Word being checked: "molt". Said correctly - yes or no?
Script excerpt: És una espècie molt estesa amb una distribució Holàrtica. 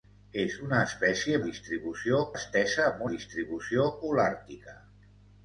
no